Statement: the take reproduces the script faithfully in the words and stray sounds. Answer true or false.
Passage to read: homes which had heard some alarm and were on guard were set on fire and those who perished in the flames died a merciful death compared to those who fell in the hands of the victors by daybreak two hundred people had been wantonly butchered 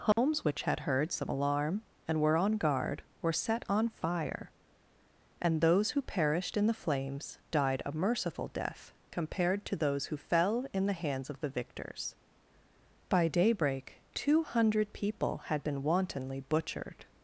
false